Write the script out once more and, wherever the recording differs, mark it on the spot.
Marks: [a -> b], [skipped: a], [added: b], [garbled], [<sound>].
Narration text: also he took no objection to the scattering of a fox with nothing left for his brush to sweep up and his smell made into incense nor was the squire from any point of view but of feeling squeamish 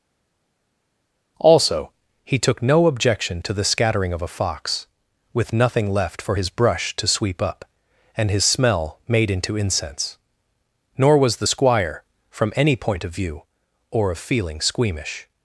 also he took no objection to the scattering of a fox with nothing left for his brush to sweep up and his smell made into incense nor was the squire from any point of view [but -> or] of feeling squeamish